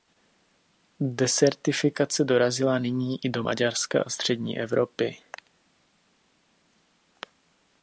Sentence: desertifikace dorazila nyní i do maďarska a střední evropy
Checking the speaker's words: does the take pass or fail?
pass